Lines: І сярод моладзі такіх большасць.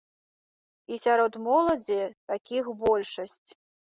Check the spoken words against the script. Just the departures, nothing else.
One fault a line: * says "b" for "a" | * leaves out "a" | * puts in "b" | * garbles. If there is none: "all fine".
all fine